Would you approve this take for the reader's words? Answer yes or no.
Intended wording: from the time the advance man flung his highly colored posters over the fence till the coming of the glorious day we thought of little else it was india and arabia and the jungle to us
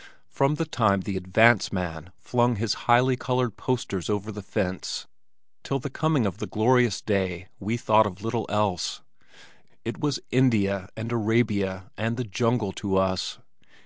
yes